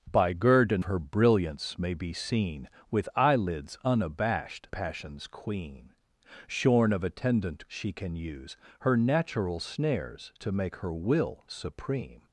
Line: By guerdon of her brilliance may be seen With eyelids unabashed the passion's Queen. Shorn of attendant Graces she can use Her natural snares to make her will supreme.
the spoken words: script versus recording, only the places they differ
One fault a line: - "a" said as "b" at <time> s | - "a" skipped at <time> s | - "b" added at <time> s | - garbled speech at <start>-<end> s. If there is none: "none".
- "of" skipped at 0.8 s
- "the" skipped at 4.7 s
- "Graces" skipped at 7.7 s